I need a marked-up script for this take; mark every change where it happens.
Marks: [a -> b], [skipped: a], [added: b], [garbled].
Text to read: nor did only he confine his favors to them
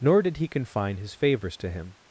nor did [skipped: only] he confine his favors to [them -> him]